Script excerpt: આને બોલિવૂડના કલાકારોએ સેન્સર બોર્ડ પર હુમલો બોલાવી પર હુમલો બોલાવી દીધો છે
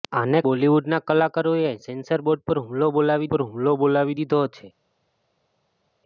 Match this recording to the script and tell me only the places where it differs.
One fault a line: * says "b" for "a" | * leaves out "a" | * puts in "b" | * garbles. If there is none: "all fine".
all fine